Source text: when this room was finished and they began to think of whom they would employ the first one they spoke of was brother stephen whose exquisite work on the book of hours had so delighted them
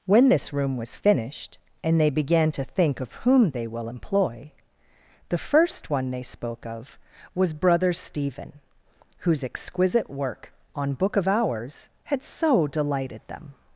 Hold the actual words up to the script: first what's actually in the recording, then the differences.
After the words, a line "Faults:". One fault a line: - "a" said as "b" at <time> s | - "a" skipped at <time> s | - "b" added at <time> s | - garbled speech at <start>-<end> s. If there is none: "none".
when this room was finished and they began to think of whom they will employ the first one they spoke of was brother stephen whose exquisite work on book of hours had so delighted them
Faults:
- "would" said as "will" at 3.7 s
- "the" skipped at 10.9 s